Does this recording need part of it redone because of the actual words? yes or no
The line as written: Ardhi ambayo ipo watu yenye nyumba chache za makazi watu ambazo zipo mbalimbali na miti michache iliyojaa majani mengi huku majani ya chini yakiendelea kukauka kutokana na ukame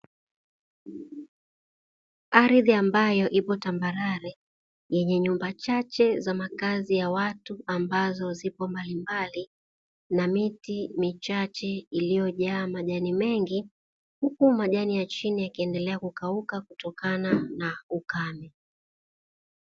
yes